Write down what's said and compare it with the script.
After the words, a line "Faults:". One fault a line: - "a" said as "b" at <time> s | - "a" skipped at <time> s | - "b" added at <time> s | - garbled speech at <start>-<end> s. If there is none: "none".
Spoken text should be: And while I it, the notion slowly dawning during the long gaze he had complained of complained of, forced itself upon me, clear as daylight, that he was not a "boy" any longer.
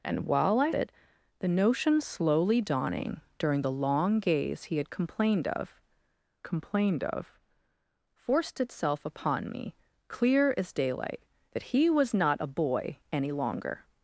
And while I it, the notion slowly dawning during the long gaze he had complained of complained of, forced itself upon me, clear as daylight, that he was not a "boy" any longer.
Faults:
none